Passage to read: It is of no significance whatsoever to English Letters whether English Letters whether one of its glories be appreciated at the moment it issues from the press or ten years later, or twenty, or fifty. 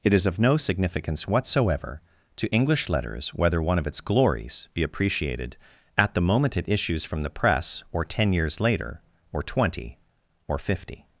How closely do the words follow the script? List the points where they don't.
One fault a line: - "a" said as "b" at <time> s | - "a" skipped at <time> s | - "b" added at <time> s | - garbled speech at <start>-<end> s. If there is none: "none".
- "English Letters whether" skipped at 3.6 s